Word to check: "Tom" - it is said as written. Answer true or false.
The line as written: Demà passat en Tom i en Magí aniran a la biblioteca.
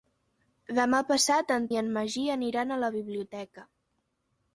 false